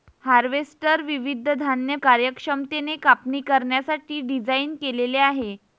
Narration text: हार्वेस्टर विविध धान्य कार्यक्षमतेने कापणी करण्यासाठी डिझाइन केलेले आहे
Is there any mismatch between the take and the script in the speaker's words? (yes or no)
no